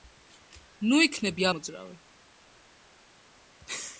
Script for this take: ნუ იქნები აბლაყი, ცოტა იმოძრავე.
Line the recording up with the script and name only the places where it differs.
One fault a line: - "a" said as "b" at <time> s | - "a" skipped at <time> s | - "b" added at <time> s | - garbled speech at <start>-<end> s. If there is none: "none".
- "აბლაყი ცოტა" skipped at 1.5 s